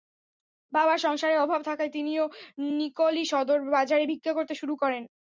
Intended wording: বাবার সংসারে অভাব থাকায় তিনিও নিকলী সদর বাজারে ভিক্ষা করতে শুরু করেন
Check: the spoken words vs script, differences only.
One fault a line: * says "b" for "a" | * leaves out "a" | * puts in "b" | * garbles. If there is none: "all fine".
all fine